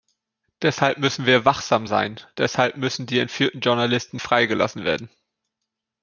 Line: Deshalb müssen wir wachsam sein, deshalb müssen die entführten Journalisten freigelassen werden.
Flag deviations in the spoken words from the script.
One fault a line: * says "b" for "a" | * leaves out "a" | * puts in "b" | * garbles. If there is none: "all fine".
all fine